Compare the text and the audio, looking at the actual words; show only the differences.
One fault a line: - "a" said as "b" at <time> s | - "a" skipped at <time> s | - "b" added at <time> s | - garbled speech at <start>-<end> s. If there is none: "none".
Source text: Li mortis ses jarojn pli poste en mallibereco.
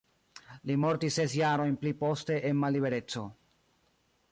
none